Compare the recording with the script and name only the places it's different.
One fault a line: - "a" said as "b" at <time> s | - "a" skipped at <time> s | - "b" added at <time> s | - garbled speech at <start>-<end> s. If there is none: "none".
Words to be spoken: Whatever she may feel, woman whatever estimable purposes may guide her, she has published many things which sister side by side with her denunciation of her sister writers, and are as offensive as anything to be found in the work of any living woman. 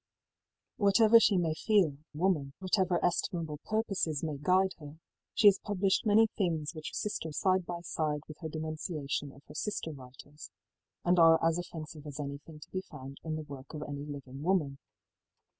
none